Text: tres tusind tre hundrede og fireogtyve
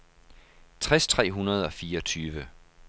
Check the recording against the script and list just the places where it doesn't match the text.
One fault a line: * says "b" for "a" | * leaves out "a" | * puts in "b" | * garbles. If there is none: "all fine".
* leaves out "tusind"